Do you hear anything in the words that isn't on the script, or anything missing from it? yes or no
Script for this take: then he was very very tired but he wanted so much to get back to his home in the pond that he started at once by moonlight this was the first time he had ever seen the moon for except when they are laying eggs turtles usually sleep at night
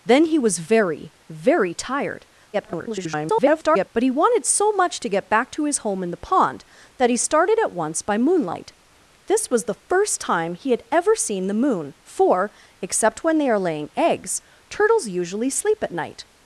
yes